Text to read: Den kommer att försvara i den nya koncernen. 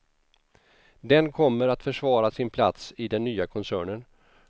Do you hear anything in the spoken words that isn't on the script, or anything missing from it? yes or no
yes